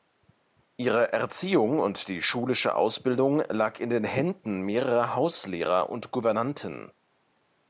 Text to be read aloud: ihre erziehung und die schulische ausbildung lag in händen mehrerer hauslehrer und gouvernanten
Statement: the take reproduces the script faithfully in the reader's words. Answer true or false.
false